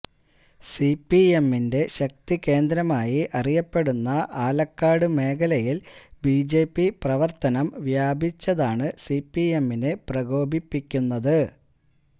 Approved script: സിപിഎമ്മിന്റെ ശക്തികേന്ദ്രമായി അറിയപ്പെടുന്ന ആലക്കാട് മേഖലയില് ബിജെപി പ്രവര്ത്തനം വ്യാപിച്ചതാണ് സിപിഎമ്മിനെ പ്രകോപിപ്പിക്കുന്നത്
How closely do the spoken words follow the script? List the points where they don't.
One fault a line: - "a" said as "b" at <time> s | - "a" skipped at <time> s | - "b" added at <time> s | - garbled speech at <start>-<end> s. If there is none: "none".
none